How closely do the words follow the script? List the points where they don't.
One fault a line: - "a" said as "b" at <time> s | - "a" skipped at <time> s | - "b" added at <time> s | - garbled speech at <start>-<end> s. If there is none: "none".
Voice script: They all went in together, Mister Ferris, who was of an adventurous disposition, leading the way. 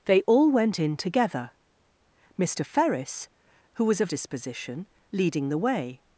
- "an adventurous" skipped at 4.1 s